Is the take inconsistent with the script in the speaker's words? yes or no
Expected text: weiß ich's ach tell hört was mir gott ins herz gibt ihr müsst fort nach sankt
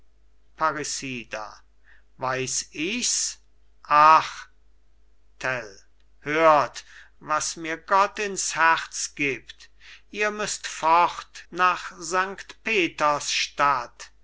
no